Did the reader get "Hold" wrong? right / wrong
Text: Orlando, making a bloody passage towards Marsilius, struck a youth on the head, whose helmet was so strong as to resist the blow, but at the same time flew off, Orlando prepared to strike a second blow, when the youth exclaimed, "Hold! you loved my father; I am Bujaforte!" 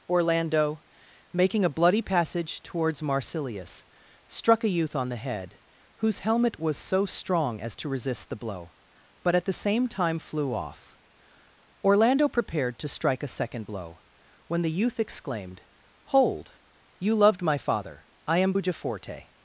right